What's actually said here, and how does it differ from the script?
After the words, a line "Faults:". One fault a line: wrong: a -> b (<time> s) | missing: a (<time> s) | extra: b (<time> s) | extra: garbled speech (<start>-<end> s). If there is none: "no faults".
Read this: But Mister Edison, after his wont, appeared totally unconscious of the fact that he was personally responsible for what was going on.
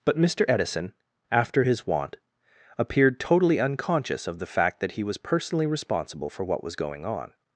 But Mister Edison, after his wont, appeared totally unconscious of the fact that he was personally responsible for what was going on.
Faults:
no faults